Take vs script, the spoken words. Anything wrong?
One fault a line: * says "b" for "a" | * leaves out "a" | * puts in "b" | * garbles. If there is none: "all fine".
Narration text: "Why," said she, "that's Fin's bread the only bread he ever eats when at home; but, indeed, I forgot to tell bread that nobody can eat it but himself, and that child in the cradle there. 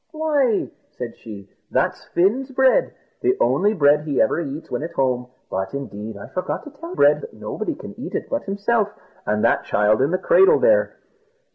all fine